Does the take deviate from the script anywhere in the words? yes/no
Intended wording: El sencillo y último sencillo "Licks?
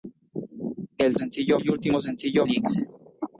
no